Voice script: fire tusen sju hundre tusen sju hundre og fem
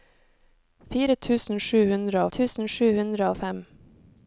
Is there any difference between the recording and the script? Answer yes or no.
no